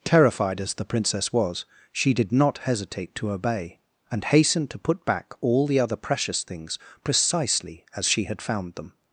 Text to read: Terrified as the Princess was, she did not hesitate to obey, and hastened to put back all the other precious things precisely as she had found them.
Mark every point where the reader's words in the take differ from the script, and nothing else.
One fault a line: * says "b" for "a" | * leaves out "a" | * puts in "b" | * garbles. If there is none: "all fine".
all fine